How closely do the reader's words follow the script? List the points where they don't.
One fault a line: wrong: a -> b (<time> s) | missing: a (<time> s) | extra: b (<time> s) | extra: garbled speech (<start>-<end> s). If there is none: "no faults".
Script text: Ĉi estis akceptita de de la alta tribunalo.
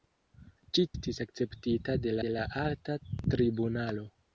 no faults